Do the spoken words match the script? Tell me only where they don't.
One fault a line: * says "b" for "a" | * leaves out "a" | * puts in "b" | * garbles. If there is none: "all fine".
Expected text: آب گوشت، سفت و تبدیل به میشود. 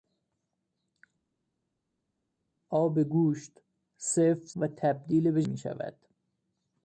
all fine